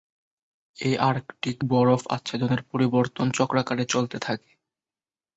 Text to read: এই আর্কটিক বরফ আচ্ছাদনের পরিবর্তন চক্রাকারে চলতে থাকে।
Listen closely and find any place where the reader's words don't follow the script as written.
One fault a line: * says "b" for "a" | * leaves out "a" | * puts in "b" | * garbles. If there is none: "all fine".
all fine